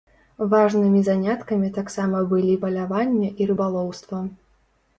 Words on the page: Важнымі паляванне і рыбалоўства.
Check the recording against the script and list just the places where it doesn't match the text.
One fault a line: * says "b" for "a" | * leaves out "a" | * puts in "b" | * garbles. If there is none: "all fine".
* puts in "заняткамі таксама былі"